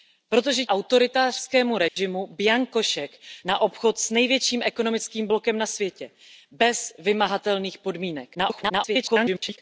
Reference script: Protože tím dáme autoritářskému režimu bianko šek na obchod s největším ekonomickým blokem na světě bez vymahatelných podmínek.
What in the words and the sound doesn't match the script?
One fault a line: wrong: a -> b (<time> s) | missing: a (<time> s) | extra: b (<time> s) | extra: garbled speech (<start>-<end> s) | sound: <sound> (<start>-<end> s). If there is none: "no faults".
missing: tím dáme (0.7 s)
sound: dropout (1.9-2.0 s)
extra: garbled speech (8.3-9.6 s)